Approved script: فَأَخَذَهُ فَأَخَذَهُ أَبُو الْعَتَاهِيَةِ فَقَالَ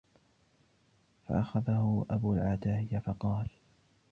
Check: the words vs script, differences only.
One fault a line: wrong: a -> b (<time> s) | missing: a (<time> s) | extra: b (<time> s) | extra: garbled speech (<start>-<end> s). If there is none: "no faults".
missing: فَأَخَذَهُ (2.0 s)